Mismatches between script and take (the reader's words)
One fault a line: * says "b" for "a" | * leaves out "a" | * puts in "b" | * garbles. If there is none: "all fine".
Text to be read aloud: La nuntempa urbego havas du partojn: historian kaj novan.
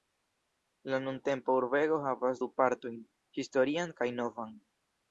all fine